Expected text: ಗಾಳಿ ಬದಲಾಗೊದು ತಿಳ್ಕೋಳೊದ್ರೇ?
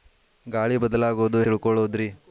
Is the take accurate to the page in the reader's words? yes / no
yes